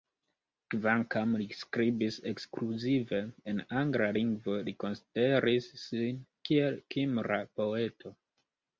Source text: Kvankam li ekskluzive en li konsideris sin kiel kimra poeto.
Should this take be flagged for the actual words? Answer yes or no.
yes